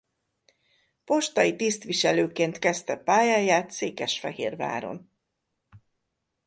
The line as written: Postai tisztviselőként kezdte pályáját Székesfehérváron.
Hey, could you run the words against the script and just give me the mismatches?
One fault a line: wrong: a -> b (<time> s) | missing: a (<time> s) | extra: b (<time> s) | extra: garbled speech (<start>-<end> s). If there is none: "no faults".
no faults